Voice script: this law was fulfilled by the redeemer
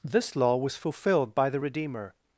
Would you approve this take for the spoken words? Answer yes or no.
yes